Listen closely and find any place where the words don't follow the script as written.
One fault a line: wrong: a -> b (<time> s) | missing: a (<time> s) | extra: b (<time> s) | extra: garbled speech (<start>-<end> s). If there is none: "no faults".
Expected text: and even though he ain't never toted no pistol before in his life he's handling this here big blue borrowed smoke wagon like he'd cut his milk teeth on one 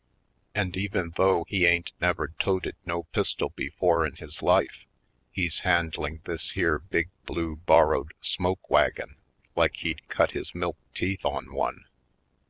no faults